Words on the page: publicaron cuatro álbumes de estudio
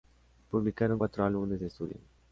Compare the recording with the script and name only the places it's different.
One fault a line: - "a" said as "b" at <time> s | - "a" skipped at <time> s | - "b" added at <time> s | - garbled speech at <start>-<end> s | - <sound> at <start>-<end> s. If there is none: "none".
none